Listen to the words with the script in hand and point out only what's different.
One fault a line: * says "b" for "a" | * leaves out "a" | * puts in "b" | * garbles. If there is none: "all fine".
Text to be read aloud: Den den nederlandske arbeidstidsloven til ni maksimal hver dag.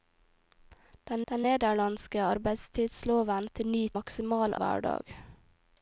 all fine